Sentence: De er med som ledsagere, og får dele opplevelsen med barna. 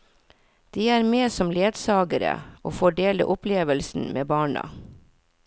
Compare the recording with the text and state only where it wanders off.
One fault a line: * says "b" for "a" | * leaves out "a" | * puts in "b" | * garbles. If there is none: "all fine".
all fine